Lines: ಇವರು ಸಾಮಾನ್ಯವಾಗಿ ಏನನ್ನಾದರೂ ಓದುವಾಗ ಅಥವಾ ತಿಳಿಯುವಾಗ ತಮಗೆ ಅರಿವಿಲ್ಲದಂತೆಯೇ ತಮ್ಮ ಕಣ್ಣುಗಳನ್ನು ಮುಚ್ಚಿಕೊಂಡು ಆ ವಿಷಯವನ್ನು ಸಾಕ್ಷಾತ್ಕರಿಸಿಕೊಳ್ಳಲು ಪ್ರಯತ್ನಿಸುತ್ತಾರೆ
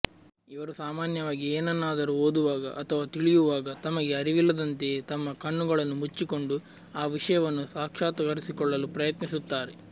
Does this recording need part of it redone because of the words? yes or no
no